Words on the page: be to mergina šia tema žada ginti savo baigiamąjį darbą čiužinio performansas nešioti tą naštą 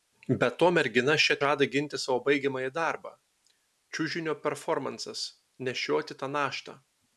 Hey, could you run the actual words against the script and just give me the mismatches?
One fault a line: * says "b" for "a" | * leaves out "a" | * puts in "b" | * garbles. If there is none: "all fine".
* leaves out "tema"